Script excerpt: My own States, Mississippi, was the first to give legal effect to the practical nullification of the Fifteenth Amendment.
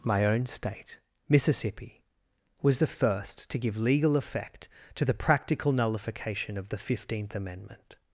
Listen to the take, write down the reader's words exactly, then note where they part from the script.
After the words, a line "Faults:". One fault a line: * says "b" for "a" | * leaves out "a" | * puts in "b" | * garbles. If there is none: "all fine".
My own State, Mississippi, was the first to give legal effect to the practical nullification of the Fifteenth Amendment.
Faults:
* says "State" for "States"